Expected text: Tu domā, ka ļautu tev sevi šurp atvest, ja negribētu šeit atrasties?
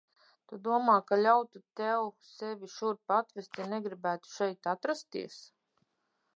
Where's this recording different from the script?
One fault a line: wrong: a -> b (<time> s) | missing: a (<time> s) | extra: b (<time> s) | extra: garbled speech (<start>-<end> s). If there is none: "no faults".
no faults